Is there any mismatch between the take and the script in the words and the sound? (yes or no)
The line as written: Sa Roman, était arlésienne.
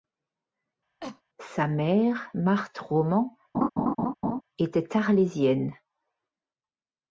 yes